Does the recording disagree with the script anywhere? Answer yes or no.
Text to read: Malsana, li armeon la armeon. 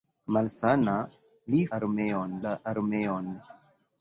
no